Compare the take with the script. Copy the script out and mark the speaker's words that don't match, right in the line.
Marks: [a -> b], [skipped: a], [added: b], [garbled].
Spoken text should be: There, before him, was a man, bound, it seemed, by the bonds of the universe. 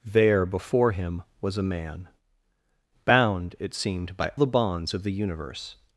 There, before him, was a man, bound, it seemed, by the bonds of the universe.